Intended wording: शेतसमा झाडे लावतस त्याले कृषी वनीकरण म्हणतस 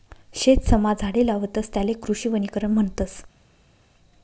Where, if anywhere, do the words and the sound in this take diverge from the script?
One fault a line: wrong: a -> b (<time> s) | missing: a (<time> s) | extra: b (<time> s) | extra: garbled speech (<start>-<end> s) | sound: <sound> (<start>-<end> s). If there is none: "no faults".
no faults